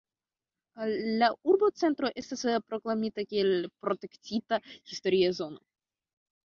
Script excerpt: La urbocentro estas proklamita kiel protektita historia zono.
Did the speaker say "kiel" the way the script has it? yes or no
yes